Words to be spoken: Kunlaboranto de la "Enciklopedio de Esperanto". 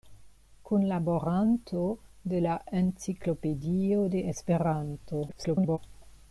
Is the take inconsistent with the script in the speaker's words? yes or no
yes